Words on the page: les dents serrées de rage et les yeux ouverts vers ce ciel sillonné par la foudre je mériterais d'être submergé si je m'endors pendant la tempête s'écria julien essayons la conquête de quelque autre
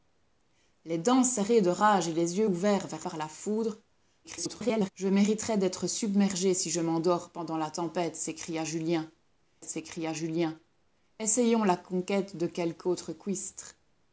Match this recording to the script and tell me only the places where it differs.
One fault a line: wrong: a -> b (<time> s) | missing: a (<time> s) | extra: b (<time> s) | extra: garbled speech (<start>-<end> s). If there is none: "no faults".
missing: ce ciel sillonné (3.0 s)
extra: garbled speech (4.2-4.9 s)
extra: s'écria julien (9.6 s)